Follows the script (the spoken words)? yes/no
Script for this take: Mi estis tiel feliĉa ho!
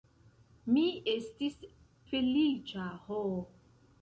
no